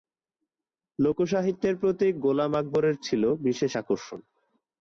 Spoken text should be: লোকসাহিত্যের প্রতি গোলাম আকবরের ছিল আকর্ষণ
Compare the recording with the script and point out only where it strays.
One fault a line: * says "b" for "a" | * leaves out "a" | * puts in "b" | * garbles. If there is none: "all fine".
* puts in "বিশেষ"